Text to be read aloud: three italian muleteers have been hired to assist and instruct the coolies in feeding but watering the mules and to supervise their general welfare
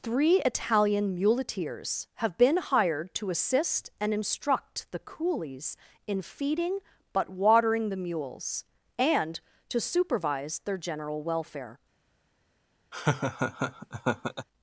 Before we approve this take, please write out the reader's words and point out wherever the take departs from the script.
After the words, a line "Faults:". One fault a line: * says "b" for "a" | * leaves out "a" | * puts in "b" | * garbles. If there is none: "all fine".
three italian muleteers have been hired to assist and instruct the coolies in feeding but watering the mules and to supervise their general welfare
Faults:
all fine